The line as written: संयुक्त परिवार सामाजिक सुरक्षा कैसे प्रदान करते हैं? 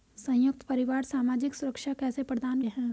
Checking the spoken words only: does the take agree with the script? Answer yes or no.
no